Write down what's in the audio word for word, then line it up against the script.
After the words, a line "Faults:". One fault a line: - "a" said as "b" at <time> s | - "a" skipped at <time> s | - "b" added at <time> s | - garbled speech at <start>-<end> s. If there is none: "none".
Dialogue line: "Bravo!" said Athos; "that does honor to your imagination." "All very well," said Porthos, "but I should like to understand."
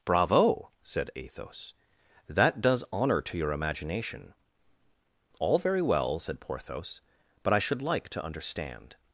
"Bravo!" said Athos; "that does honor to your imagination." "All very well," said Porthos, "but I should like to understand."
Faults:
none